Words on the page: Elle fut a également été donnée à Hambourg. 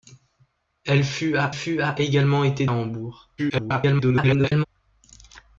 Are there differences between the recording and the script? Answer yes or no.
yes